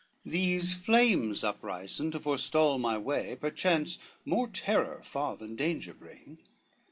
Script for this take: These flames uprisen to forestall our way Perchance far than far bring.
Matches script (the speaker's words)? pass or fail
fail